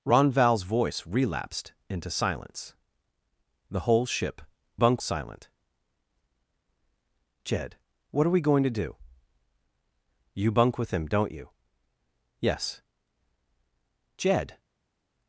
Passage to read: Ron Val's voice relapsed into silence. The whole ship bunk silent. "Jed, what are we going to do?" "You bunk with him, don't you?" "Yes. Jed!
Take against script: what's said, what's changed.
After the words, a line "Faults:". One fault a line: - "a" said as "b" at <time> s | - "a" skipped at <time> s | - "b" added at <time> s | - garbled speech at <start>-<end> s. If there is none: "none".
Ron Val's voice relapsed into silence. The whole ship bunk silent. "Jed, what are we going to do?" "You bunk with him, don't you?" "Yes. Jed!
Faults:
none